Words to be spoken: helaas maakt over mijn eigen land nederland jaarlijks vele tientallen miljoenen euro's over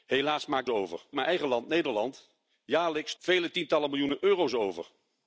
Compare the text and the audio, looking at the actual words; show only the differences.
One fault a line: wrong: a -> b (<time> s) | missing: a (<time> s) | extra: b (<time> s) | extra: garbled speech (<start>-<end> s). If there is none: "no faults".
no faults